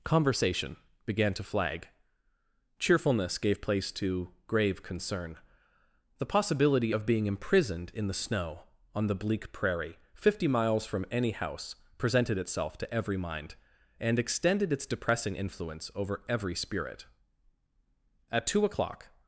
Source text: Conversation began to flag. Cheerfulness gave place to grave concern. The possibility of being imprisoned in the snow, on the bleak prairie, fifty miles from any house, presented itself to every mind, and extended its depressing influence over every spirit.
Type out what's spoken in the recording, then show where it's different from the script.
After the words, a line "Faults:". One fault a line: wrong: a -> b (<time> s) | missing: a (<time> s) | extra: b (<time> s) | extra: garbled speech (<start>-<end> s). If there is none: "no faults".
Conversation began to flag. Cheerfulness gave place to grave concern. The possibility of being imprisoned in the snow, on the bleak prairie, fifty miles from any house, presented itself to every mind, and extended its depressing influence over every spirit. "At two o'clock
Faults:
extra: At two o'clock (18.3 s)